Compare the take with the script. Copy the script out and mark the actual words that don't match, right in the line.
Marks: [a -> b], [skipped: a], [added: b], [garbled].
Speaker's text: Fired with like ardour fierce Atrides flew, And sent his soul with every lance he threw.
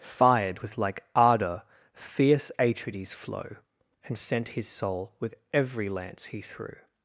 Fired with like ardour fierce Atrides [flew, -> flow] And sent his soul with every lance he threw.